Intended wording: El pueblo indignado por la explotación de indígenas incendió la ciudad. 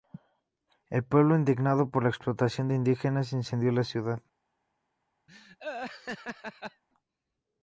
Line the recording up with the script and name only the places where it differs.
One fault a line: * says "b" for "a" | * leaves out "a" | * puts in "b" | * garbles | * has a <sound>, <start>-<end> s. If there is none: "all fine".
* has a laugh, 5.3-6.8 s